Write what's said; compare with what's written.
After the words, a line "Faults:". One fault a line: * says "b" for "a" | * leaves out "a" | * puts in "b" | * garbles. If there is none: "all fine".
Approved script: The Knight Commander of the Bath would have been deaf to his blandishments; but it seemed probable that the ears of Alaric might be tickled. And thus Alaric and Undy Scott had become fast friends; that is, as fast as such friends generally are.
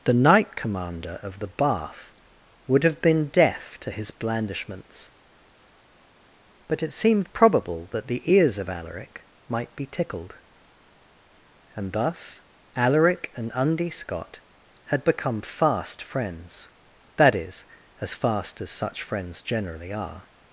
The Knight Commander of the Bath would have been deaf to his blandishments; but it seemed probable that the ears of Alaric might be tickled. And thus Alaric and Undy Scott had become fast friends; that is, as fast as such friends generally are.
Faults:
all fine